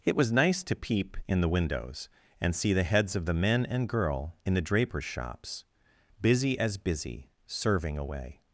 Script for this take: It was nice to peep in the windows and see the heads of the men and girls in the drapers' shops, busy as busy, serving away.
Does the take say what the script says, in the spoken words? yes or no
no